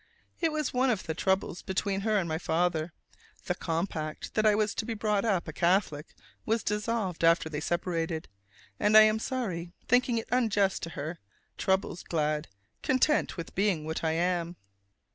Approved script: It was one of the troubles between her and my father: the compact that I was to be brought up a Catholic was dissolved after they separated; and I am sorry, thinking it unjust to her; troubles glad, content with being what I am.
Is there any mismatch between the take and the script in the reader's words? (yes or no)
no